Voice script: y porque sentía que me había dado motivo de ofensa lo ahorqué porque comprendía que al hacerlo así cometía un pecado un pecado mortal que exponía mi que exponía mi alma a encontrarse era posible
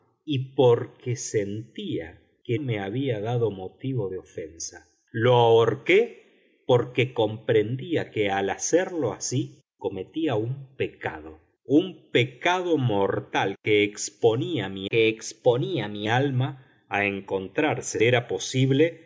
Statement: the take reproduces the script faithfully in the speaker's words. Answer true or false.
true